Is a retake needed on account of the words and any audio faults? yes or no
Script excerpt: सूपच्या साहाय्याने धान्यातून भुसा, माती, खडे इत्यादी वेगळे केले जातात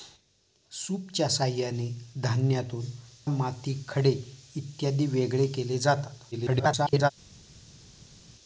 yes